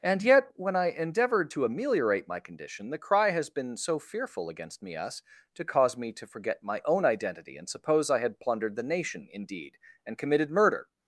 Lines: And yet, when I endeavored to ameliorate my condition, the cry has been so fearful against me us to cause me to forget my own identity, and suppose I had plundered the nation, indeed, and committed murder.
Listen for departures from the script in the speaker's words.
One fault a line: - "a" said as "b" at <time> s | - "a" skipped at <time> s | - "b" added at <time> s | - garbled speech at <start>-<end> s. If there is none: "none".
none